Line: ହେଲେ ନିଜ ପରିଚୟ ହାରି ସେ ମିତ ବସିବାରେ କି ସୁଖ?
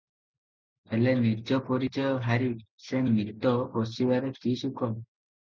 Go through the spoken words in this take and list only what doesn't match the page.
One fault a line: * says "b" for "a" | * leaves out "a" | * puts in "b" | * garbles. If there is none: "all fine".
all fine